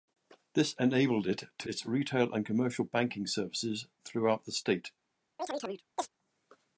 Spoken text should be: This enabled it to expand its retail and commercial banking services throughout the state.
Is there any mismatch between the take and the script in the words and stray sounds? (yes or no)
yes